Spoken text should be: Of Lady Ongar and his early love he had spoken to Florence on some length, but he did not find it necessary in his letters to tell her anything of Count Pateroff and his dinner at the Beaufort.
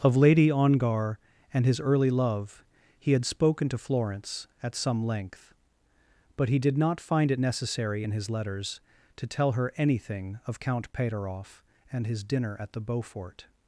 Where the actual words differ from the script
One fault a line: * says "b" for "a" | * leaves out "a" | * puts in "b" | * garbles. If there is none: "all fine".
* says "at" for "on"